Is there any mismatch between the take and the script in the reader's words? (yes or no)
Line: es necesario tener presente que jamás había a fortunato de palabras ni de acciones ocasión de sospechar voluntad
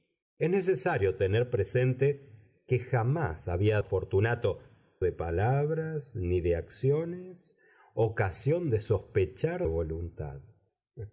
no